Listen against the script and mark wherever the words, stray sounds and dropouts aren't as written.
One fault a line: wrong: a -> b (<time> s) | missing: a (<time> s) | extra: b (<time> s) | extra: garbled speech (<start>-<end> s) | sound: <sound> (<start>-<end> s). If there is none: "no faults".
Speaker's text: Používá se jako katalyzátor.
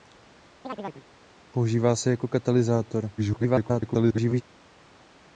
sound: chirp (0.6-1.1 s)
extra: garbled speech (3.2-4.4 s)